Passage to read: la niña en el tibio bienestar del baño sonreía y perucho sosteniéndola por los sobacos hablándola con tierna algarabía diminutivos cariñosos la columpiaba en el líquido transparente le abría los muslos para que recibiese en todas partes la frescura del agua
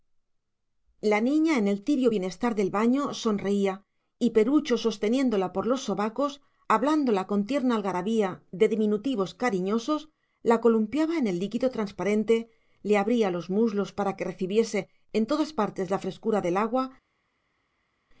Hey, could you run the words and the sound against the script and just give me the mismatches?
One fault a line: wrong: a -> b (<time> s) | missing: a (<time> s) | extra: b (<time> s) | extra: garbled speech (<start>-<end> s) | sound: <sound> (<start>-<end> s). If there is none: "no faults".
extra: de (8.5 s)